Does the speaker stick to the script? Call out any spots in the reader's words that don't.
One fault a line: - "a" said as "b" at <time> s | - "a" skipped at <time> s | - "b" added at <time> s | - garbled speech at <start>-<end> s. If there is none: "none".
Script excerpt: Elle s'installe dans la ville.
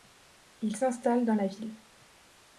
- "Elle" said as "Il" at 0.6 s